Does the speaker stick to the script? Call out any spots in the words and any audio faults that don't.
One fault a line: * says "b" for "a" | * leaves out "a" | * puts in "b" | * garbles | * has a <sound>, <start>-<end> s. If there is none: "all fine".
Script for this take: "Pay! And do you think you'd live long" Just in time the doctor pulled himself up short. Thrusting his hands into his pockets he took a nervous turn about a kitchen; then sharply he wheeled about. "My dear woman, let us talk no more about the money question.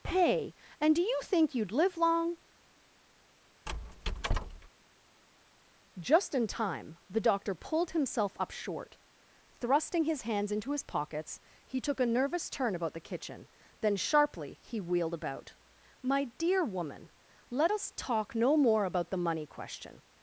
* has a squeak, 3.7-4.7 s
* says "the" for "a"